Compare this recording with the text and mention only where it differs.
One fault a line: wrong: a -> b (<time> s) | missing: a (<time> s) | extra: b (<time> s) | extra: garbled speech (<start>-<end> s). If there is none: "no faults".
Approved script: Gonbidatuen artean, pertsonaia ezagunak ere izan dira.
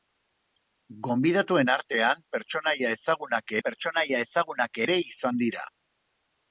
extra: pertsonaia ezagunak (3.7 s)